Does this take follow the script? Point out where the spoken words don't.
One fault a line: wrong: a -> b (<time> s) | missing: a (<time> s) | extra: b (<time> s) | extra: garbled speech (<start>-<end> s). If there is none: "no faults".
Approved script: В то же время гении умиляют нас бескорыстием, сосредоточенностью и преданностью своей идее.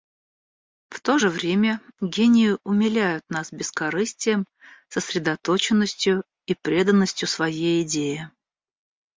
no faults